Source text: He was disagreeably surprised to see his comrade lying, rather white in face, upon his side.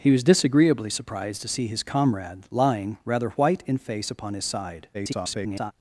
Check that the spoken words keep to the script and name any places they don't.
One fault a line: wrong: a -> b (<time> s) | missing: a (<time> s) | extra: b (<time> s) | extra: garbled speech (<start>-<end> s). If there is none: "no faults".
extra: garbled speech (4.9-5.7 s)